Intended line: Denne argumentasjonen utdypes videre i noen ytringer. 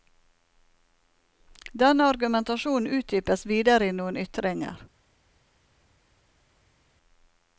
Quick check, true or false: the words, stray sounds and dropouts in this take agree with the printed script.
true